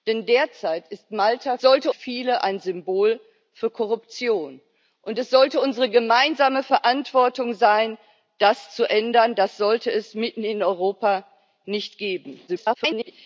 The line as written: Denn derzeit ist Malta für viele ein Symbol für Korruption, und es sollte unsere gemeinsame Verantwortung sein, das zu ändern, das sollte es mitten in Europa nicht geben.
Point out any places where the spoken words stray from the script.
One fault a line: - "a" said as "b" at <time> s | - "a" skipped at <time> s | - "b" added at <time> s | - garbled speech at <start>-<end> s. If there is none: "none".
- "für" said as "sollte" at 1.6 s
- garbled speech at 12.5-13.1 s